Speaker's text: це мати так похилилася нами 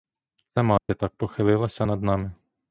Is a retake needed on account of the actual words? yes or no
yes